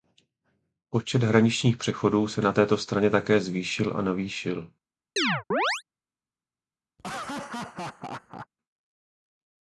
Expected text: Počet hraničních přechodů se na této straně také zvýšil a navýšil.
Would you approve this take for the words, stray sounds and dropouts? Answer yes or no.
no